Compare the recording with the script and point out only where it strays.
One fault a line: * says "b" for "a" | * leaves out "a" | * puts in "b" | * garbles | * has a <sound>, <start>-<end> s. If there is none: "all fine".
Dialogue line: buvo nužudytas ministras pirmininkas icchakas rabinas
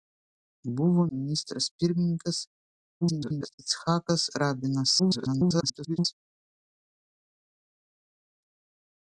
* leaves out "nužudytas"
* garbles
* garbles